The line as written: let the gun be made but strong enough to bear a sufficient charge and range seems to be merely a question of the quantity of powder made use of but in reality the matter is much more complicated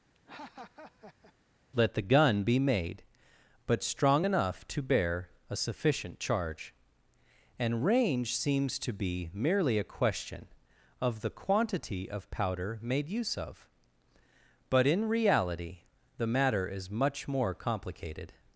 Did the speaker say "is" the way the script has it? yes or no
yes